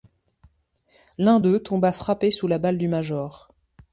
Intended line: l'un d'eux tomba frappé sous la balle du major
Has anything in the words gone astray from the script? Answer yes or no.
no